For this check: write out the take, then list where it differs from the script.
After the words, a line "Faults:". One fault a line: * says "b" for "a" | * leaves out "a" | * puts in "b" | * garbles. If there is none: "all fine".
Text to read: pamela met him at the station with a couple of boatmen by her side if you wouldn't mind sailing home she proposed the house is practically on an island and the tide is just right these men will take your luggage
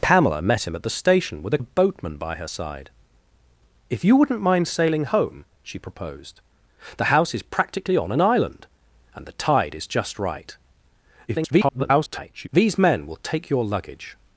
pamela met him at the station with a of boatmen by her side if you wouldn't mind sailing home she proposed the house is practically on an island and the tide is just right [garbled] these men will take your luggage
Faults:
* leaves out "couple"
* garbles